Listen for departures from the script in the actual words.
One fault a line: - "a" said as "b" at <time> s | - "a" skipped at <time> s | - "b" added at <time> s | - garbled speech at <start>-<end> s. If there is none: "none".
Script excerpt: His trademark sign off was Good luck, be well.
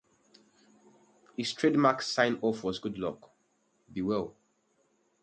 none